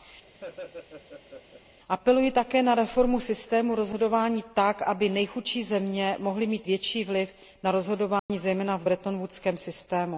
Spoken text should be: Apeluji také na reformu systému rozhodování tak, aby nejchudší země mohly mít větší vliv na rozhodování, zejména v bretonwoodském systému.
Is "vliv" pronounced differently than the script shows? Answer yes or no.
no